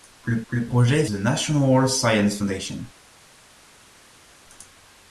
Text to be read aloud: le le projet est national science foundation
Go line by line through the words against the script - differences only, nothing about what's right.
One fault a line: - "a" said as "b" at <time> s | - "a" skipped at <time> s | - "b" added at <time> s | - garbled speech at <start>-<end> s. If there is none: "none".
none